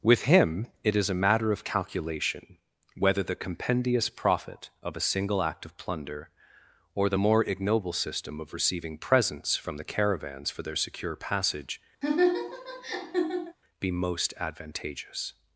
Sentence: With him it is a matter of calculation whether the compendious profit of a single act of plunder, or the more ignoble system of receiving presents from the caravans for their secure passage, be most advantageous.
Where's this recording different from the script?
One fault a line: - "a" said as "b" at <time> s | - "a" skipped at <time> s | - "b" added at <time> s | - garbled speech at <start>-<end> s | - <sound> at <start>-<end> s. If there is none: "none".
- laugh at 12.0-13.6 s